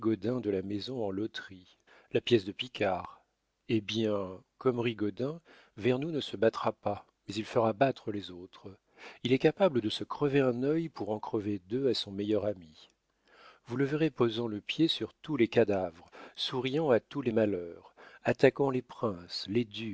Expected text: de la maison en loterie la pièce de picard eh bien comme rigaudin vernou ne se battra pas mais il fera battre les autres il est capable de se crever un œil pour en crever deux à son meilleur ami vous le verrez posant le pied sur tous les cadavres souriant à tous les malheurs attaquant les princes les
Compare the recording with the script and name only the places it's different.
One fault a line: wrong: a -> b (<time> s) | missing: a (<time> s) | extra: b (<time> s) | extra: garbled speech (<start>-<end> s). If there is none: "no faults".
no faults